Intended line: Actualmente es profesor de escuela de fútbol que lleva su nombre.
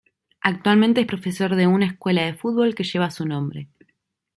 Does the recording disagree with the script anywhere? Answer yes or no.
yes